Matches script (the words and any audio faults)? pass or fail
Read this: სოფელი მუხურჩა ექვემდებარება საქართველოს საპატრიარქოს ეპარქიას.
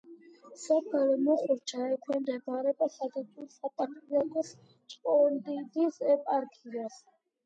fail